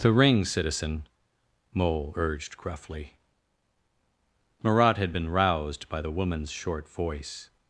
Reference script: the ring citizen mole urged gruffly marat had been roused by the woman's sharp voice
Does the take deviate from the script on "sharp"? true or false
true